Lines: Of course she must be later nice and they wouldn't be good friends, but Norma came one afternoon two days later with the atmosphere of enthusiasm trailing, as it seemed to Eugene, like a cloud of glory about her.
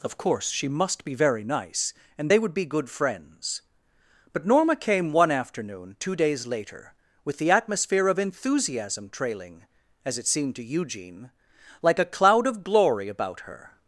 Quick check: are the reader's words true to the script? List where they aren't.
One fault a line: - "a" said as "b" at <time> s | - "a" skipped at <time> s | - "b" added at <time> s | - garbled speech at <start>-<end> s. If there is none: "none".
- "later" said as "very" at 1.1 s
- "wouldn't" said as "would" at 2.4 s